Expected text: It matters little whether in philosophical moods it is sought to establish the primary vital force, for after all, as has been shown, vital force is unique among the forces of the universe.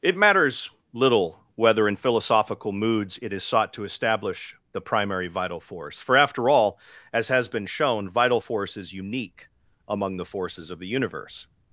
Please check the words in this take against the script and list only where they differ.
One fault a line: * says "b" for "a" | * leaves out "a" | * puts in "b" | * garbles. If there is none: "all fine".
all fine